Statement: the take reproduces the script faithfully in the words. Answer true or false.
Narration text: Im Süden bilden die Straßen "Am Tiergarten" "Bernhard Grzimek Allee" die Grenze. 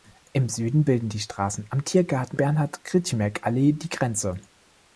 true